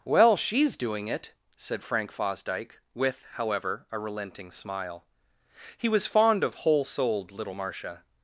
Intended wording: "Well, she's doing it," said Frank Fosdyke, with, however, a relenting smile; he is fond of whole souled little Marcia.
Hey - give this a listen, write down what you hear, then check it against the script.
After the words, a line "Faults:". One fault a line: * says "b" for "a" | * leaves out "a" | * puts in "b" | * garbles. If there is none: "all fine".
"Well, she's doing it," said Frank Fosdyke, with, however, a relenting smile; he was fond of whole souled little Marcia.
Faults:
* says "was" for "is"